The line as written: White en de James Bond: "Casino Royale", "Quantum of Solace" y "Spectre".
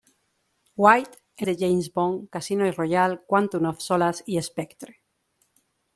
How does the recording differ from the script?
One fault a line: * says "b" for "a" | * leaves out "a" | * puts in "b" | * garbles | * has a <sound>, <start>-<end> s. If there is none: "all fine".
all fine